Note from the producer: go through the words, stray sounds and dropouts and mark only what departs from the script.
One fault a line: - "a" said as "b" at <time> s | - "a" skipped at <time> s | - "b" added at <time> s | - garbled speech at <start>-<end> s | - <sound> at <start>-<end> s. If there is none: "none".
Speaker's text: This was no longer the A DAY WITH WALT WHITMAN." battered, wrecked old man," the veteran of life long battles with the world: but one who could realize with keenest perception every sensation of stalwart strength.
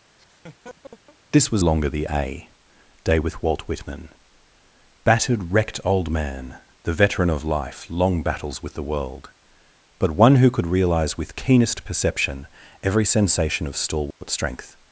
- laugh at 0.2-1.2 s
- "no" skipped at 1.6 s
- dropout at 14.1-14.2 s